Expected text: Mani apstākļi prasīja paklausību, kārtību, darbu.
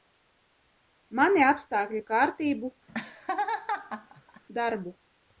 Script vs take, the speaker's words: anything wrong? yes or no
yes